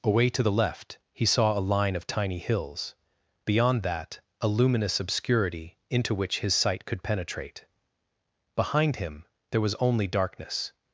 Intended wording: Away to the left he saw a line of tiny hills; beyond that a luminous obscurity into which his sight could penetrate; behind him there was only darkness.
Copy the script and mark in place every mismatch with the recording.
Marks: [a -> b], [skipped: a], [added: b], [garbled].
Away to the left he saw a line of tiny hills; beyond that a luminous obscurity into which his sight could penetrate; behind him there was only darkness.